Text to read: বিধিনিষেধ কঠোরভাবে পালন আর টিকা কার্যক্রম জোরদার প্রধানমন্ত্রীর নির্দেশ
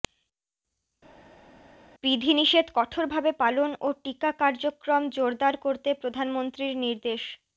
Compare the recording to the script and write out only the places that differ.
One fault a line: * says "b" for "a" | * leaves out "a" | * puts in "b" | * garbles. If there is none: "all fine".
* says "ও" for "আর"
* puts in "করতে"